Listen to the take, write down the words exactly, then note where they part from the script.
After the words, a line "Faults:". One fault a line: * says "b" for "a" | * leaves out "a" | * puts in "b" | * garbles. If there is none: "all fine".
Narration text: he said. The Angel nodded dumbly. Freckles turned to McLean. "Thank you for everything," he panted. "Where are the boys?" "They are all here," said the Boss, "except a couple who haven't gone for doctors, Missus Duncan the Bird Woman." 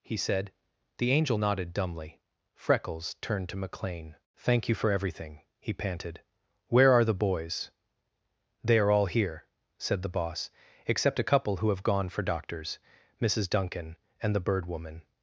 he said. The Angel nodded dumbly. Freckles turned to McLean. "Thank you for everything," he panted. "Where are the boys?" "They are all here," said the Boss, "except a couple who have gone for doctors, Missus Duncan and the Bird Woman."
Faults:
* says "have" for "haven't"
* puts in "and"